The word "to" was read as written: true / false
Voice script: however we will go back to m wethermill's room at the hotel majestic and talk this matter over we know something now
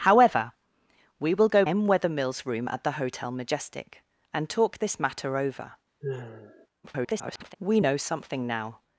false